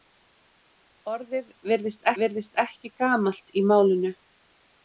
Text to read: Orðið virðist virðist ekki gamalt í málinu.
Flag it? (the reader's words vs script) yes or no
no